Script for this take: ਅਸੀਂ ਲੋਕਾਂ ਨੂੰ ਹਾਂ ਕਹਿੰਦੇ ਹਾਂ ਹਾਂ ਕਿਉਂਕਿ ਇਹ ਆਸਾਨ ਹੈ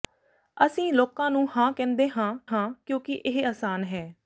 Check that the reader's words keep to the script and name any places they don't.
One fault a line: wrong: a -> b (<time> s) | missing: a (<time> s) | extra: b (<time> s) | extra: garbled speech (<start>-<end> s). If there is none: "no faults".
no faults